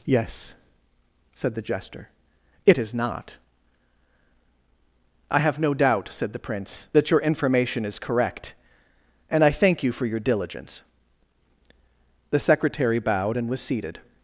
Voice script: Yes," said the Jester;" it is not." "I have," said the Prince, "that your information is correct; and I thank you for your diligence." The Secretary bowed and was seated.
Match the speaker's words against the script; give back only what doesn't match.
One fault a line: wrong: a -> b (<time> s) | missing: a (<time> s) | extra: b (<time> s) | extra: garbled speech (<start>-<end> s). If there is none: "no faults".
extra: no doubt (5.6 s)